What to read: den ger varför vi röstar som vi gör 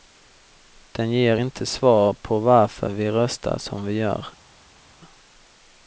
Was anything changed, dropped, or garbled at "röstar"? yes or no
no